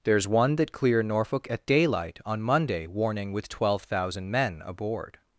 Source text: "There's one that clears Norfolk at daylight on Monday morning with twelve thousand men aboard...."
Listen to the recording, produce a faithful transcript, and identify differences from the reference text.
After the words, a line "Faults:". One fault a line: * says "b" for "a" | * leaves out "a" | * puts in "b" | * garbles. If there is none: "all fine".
"There's one that clear Norfolk at daylight on Monday warning with twelve thousand men aboard...."
Faults:
* says "clear" for "clears"
* says "warning" for "morning"